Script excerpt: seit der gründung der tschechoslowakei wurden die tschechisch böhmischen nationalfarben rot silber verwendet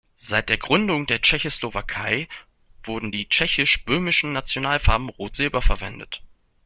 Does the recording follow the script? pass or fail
pass